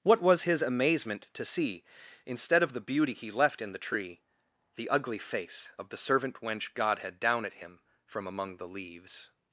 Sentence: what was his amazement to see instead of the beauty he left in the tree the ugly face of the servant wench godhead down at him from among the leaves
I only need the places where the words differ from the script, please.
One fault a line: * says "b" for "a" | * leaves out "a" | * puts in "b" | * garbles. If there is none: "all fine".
all fine